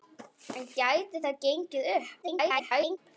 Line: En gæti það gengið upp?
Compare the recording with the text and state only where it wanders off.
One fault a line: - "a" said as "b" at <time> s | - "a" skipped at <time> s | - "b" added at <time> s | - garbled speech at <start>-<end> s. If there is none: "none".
- garbled speech at 2.2-3.0 s